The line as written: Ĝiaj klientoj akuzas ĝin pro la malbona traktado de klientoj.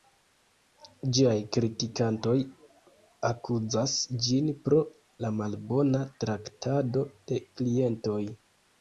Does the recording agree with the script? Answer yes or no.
no